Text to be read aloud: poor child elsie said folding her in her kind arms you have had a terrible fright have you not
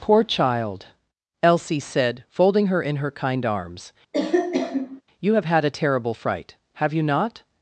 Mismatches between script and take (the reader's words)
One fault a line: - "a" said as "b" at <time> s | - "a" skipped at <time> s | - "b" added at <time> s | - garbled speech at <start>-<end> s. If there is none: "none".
none